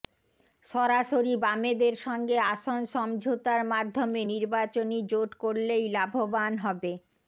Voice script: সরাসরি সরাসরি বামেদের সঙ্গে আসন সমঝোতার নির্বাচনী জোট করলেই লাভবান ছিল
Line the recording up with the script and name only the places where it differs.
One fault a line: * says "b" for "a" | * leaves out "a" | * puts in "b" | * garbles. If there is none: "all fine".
* leaves out "সরাসরি"
* puts in "মাধ্যমে"
* says "হবে" for "ছিল"